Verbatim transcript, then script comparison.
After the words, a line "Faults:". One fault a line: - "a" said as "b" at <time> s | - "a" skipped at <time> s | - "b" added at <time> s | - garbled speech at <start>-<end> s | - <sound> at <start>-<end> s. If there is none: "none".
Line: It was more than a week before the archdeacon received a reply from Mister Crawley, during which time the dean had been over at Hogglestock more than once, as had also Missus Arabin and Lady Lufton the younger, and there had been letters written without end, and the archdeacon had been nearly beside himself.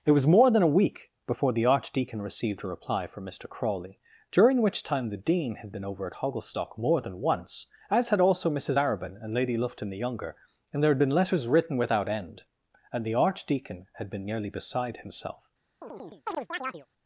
It was more than a week before the archdeacon received a reply from Mister Crawley, during which time the dean had been over at Hogglestock more than once, as had also Missus Arabin and Lady Lufton the younger, and there had been letters written without end, and the archdeacon had been nearly beside himself.
Faults:
- chirp at 15.8-16.9 s